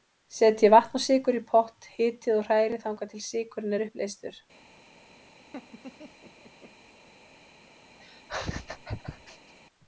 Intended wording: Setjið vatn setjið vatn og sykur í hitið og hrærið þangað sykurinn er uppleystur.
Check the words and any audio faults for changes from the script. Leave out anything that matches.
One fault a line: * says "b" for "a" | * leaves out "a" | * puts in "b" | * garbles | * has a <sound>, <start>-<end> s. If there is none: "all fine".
* leaves out "setjið vatn"
* puts in "pott"
* puts in "til"
* has a laugh, 5.5-6.7 s
* has a laugh, 8.0-9.5 s